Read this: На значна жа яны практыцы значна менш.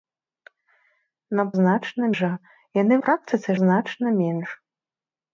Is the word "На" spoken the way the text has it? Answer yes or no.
yes